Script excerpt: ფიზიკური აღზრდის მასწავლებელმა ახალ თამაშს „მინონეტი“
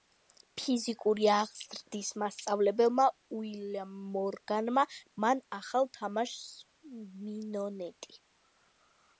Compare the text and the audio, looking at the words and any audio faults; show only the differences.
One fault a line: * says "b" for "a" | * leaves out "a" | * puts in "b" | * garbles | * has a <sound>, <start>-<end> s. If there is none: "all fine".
* puts in "უილიამ მორგანმა მან"